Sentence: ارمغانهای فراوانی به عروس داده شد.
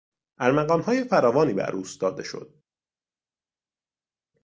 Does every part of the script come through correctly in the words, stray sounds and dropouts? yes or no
yes